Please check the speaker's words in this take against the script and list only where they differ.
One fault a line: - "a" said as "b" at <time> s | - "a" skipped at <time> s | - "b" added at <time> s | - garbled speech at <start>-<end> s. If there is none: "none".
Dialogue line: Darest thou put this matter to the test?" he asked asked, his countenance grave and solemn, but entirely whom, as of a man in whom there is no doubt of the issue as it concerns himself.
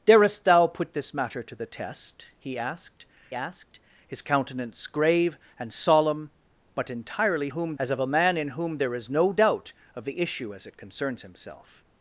none